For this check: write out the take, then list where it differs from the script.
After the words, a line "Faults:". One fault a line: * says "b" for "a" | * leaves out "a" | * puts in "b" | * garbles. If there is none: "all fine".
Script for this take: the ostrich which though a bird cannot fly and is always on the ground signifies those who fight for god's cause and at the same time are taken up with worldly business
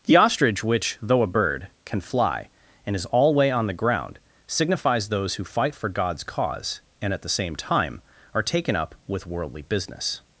the ostrich which though a bird can fly and is alway on the ground signifies those who fight for god's cause and at the same time are taken up with worldly business
Faults:
* says "can" for "cannot"
* says "alway" for "always"